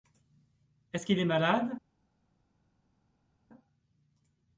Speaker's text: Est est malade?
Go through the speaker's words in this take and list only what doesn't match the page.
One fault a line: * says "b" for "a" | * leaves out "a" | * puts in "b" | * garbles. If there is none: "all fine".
* puts in "ce qu'il"